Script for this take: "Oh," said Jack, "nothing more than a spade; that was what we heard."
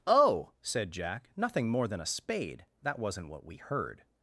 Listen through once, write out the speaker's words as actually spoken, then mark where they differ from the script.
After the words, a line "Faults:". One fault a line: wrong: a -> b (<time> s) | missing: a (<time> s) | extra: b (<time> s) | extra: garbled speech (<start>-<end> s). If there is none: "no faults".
"Oh," said Jack, "nothing more than a spade; that wasn't what we heard."
Faults:
wrong: was -> wasn't (3.0 s)